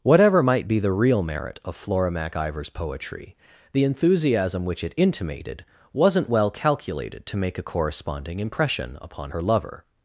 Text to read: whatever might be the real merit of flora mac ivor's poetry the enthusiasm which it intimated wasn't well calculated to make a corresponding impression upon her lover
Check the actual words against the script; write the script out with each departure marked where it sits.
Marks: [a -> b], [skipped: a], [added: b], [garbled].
whatever might be the real merit of flora mac ivor's poetry the enthusiasm which it intimated wasn't well calculated to make a corresponding impression upon her lover